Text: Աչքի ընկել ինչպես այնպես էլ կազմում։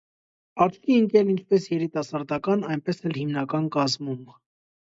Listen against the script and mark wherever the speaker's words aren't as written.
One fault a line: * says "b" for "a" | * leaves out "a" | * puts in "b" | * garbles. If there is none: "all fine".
* puts in "երիտասարդական"
* puts in "հիմնական"